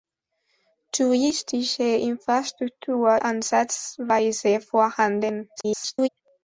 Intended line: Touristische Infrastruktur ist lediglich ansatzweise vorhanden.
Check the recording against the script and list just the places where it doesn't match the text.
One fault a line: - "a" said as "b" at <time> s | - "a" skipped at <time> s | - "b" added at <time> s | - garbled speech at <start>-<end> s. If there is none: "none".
- "ist lediglich" skipped at 3.2 s
- garbled speech at 5.6-6.1 s